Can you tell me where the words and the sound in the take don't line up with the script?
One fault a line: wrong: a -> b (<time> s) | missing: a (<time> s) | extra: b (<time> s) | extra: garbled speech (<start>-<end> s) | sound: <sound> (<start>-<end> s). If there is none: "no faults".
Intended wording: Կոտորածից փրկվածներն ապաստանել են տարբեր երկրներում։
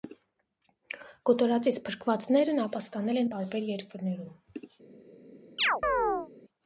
sound: chirp (5.6-6.3 s)